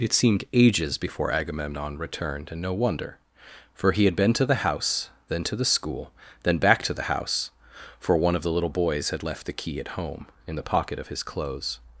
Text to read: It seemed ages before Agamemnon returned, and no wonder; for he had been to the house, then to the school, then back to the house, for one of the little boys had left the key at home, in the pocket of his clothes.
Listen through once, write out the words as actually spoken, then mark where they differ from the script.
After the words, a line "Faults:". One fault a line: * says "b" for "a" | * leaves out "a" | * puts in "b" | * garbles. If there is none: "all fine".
It seemed ages before Agamemnon returned, and no wonder; for he had been to the house, then to the school, then back to the house, for one of the little boys had left the key at home, in the pocket of his clothes.
Faults:
all fine